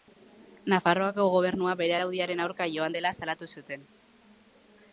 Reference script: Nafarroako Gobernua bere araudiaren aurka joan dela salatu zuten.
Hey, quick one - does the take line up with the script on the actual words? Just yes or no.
yes